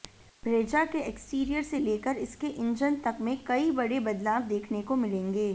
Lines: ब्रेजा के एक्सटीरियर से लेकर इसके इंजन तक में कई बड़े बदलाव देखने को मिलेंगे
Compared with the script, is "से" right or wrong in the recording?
right